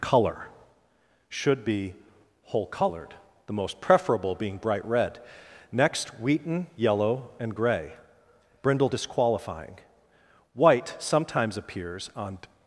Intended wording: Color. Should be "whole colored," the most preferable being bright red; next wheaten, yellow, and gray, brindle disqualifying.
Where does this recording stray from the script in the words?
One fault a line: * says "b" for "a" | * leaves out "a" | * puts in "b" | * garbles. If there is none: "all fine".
* puts in "White sometimes appears on"